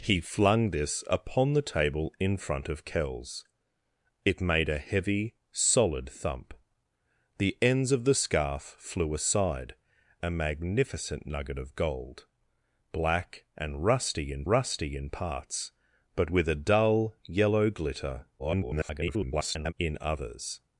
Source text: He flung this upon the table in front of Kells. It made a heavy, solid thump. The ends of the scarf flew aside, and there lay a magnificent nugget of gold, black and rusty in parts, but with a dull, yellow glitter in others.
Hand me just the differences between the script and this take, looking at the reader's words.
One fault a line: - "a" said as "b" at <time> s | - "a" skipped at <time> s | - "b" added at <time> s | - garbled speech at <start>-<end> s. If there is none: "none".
- "and there lay" skipped at 9.8 s
- "rusty in" added at 14.5 s
- garbled speech at 18.4-19.7 s